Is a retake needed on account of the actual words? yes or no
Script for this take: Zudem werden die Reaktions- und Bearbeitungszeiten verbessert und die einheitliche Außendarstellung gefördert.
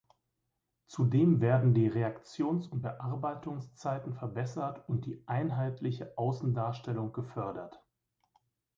no